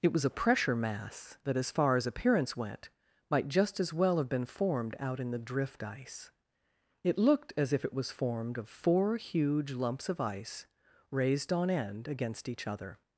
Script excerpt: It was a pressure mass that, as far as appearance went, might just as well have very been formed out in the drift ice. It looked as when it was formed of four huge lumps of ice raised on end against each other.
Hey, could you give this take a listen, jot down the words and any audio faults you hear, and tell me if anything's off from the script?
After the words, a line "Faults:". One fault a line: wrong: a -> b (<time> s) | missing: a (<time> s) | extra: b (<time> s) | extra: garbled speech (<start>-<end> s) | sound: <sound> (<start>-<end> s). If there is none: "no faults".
It was a pressure mass that, as far as appearance went, might just as well have been formed out in the drift ice. It looked as if it was formed of four huge lumps of ice raised on end against each other.
Faults:
missing: very (4.3 s)
wrong: when -> if (7.7 s)